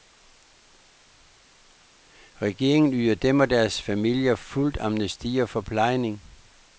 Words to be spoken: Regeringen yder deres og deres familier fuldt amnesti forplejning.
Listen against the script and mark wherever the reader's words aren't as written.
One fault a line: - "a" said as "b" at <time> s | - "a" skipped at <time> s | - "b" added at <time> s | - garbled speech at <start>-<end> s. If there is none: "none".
- "deres" said as "dem" at 3.1 s
- "og" added at 5.4 s